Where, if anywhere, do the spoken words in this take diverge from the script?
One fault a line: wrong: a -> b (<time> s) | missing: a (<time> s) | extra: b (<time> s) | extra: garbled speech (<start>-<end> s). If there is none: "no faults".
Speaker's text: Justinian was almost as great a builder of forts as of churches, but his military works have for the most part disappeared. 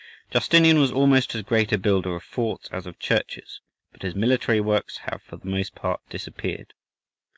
no faults